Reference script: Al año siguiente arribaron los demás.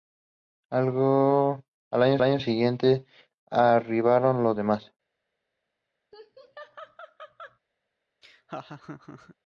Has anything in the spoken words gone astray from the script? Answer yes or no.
yes